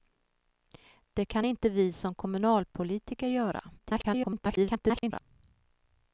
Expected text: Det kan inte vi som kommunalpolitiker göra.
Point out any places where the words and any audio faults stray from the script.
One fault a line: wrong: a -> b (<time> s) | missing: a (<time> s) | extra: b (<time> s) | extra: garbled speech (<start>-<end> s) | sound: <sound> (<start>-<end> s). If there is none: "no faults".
extra: garbled speech (3.8-5.2 s)